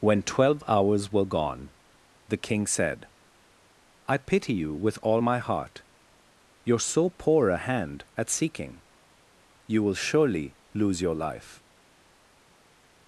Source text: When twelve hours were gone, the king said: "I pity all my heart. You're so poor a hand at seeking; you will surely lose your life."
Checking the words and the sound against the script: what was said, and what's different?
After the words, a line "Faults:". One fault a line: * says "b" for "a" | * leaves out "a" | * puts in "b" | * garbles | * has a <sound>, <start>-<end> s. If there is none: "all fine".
When twelve hours were gone, the king said: "I pity you with all my heart. You're so poor a hand at seeking; you will surely lose your life."
Faults:
* puts in "you with"